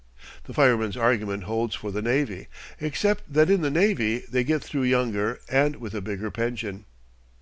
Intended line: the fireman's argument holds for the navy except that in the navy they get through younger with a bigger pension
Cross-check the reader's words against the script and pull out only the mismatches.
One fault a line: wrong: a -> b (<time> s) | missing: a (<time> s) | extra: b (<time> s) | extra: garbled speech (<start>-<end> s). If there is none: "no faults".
extra: and (5.5 s)